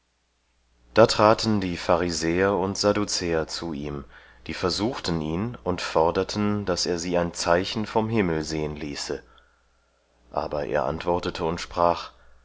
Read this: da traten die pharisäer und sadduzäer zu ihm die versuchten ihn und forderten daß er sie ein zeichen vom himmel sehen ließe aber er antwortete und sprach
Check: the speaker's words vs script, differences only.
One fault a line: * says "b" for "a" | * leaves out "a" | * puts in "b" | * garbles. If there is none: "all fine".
all fine